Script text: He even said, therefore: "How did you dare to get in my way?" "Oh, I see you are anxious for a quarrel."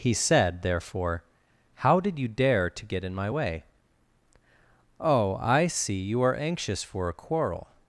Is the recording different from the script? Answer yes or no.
yes